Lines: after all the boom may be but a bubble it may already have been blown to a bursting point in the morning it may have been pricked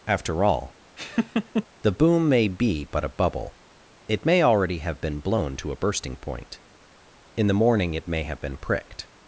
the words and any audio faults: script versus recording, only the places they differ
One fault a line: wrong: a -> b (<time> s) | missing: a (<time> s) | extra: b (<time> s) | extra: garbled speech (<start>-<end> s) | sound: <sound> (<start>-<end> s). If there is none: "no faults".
sound: laugh (1.0-1.7 s)